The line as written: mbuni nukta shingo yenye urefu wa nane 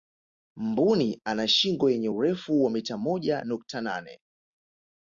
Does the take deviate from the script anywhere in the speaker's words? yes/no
yes